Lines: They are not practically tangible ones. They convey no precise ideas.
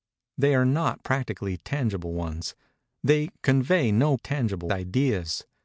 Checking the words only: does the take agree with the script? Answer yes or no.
no